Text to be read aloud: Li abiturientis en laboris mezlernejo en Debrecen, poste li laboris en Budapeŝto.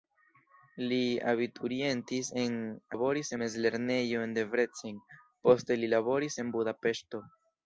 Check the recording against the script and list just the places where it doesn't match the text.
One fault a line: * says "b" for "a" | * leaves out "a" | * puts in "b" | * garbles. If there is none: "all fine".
all fine